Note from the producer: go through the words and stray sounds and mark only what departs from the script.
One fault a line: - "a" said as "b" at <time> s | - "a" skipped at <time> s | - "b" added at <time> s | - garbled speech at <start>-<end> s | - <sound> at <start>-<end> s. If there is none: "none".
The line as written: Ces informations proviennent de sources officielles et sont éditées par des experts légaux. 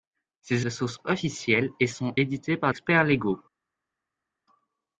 - "informations proviennent" skipped at 0.7 s
- "des" skipped at 2.7 s